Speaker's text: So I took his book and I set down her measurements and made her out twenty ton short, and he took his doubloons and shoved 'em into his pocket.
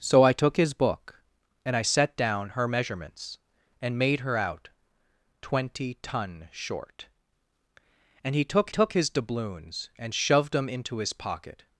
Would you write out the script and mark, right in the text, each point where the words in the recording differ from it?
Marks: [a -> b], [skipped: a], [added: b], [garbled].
So I took his book and I set down her measurements and made her out twenty ton short, and he took [added: took] his doubloons and shoved 'em into his pocket.